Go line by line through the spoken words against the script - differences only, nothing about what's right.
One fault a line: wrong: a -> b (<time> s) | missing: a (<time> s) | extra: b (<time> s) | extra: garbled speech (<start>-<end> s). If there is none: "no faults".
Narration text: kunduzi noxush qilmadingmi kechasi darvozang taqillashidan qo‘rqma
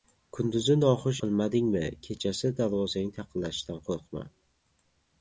no faults